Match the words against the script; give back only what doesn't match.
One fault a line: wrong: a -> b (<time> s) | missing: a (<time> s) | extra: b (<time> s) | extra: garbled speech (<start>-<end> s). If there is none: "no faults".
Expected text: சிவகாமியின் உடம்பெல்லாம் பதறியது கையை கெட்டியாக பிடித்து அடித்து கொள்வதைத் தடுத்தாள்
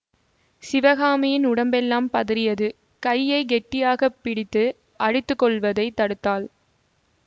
no faults